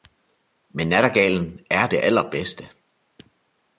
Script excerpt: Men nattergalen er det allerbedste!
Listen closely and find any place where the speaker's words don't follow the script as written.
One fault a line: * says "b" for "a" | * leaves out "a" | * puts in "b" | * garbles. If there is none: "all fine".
all fine